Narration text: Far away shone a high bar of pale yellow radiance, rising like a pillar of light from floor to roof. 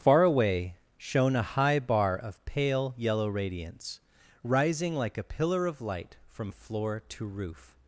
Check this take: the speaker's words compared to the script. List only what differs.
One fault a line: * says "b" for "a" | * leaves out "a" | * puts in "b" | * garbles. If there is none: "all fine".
all fine